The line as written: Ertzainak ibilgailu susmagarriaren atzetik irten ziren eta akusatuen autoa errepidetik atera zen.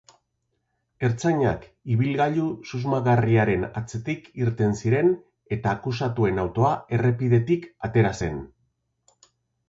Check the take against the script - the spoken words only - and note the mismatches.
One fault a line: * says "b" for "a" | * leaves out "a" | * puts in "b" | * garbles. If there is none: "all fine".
all fine